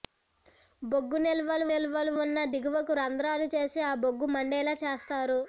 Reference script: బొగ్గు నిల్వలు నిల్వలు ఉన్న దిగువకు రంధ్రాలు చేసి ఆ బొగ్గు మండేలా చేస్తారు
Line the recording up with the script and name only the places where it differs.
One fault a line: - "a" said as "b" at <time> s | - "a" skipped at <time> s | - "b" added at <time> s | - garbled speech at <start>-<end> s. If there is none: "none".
none